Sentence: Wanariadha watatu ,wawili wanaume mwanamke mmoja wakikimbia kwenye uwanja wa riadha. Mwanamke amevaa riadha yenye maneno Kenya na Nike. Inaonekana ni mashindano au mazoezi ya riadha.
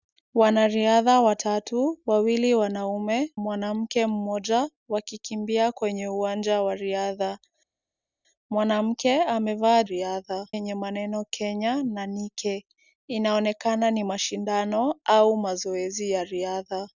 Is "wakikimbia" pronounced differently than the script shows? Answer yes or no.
no